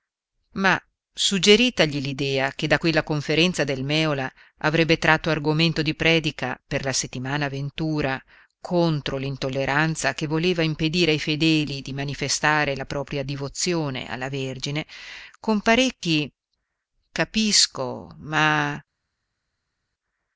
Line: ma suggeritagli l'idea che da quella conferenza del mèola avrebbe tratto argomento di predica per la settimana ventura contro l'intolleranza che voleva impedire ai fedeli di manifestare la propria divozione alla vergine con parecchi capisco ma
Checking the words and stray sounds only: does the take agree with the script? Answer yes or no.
yes